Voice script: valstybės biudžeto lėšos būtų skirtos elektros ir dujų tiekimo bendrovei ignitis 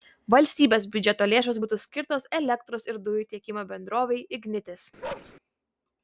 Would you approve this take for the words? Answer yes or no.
yes